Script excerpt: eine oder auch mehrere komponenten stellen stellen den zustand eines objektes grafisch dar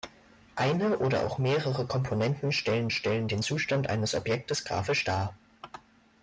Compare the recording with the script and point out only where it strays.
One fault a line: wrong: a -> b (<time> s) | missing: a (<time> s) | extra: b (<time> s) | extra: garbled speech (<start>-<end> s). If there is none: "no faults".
no faults